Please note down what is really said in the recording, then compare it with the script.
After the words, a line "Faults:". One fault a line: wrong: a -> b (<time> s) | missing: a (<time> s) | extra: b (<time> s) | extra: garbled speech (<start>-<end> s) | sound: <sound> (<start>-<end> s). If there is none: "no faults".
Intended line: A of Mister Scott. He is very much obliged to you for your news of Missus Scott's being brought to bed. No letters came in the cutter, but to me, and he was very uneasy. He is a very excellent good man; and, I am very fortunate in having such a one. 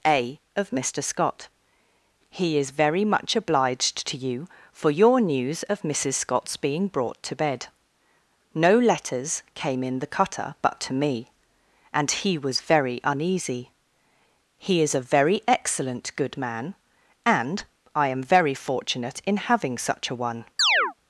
A of Mister Scott. He is very much obliged to you for your news of Missus Scott's being brought to bed. No letters came in the cutter, but to me, and he was very uneasy. He is a very excellent good man; and, I am very fortunate in having such a one.
Faults:
sound: chirp (20.6-20.9 s)